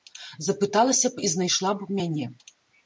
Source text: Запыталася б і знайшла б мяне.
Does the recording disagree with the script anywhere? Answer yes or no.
no